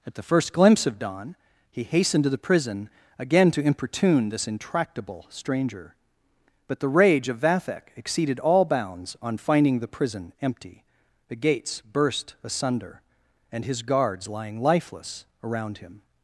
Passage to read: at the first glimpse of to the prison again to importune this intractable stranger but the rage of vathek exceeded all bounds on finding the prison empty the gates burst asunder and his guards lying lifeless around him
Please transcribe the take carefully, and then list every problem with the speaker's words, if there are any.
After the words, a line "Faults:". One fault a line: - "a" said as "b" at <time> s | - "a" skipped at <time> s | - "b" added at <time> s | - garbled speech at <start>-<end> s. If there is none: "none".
at the first glimpse of dawn he hastened to the prison again to importune this intractable stranger but the rage of vathek exceeded all bounds on finding the prison empty the gates burst asunder and his guards lying lifeless around him
Faults:
- "dawn he hastened" added at 1.0 s